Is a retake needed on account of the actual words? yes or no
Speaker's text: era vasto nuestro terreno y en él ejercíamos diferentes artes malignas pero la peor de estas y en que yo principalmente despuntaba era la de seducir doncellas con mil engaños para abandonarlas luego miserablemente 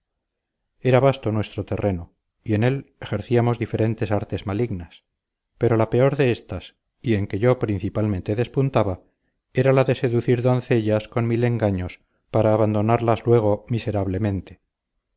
no